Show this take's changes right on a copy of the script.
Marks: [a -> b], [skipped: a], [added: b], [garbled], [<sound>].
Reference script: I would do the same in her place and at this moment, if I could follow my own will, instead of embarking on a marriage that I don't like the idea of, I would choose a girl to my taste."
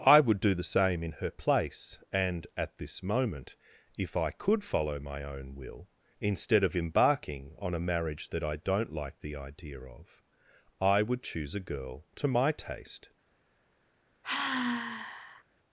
I would do the same in her place and at this moment, if I could follow my own will, instead of embarking on a marriage that I don't like the idea of, I would choose a girl to my taste." [sigh]